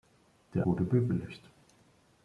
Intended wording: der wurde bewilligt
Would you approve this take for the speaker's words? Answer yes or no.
yes